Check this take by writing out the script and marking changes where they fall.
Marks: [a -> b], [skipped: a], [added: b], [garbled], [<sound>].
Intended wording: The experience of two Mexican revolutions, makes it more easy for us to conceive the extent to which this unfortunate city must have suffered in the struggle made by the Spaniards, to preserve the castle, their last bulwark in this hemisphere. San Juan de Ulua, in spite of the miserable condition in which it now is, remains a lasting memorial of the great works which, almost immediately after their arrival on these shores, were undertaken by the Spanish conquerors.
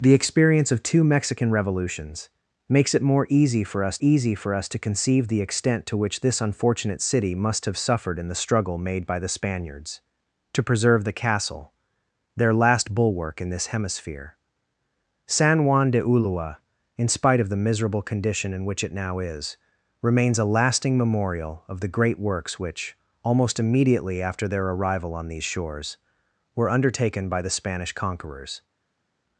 The experience of two Mexican revolutions, makes it more easy for us [added: easy for us] to conceive the extent to which this unfortunate city must have suffered in the struggle made by the Spaniards, to preserve the castle, their last bulwark in this hemisphere. San Juan de Ulua, in spite of the miserable condition in which it now is, remains a lasting memorial of the great works which, almost immediately after their arrival on these shores, were undertaken by the Spanish conquerors.